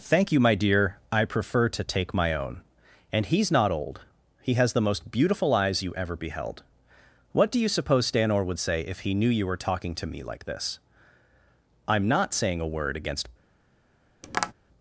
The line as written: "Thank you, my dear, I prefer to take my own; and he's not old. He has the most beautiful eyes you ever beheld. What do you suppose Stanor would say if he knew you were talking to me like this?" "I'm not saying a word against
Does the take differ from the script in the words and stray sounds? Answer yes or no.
yes